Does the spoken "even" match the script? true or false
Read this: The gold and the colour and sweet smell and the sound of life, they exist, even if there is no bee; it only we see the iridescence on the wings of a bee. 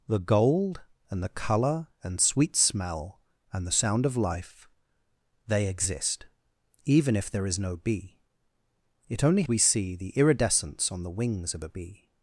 true